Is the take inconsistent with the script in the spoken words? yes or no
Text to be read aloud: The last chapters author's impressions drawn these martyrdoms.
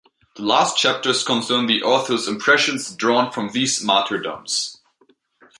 yes